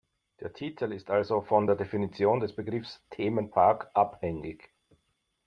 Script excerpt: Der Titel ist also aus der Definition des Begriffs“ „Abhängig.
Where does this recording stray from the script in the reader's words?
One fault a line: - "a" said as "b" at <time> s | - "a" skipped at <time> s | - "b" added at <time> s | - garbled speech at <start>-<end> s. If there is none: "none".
- "aus" said as "von" at 1.4 s
- "Themenpark" added at 3.1 s